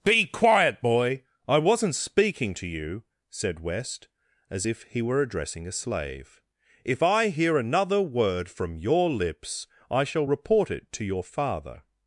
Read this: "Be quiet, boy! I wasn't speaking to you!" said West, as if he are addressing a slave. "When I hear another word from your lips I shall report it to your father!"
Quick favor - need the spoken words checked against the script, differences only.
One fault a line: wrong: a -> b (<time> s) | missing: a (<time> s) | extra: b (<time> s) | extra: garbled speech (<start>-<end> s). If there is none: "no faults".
wrong: are -> were (5.0 s)
wrong: When -> If (6.8 s)